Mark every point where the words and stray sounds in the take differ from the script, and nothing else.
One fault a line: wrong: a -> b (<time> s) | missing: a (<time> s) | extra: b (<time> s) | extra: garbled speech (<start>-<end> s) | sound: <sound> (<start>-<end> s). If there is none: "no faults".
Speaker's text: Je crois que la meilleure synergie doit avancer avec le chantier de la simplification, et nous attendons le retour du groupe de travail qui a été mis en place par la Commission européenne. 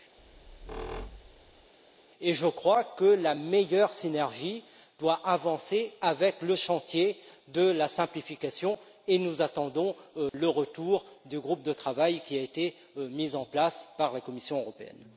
sound: squeak (0.2-1.7 s)
sound: dropout (10.3-10.3 s)